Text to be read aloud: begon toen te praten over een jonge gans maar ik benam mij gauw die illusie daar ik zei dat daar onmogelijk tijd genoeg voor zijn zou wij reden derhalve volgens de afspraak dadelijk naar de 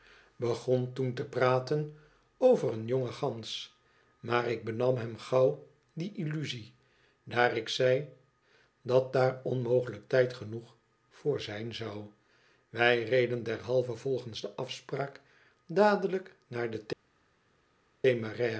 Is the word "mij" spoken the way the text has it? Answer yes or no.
no